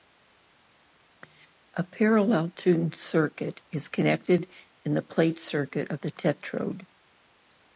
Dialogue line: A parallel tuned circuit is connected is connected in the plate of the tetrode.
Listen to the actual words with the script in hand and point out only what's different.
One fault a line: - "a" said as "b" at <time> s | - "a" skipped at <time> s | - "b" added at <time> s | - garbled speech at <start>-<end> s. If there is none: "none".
- "is connected" skipped at 4.5 s
- "circuit" added at 5.4 s